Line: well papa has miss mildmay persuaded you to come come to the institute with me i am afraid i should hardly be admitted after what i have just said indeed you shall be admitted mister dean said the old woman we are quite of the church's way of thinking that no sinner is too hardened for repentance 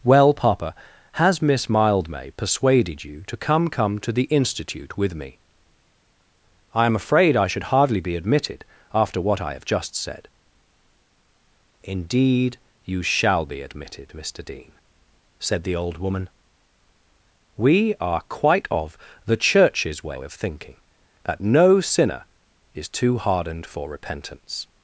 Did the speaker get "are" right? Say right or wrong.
right